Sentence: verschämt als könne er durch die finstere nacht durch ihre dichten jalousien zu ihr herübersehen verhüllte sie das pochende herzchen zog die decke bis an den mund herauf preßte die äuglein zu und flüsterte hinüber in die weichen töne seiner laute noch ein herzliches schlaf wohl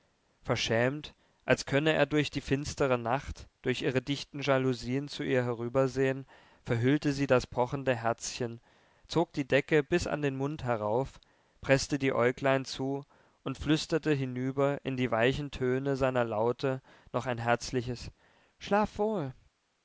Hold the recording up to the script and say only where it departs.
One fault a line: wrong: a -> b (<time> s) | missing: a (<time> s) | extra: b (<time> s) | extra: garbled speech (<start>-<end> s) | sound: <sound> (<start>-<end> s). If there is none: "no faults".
no faults